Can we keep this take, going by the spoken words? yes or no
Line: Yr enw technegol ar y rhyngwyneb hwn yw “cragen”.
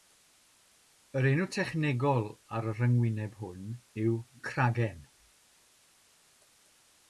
yes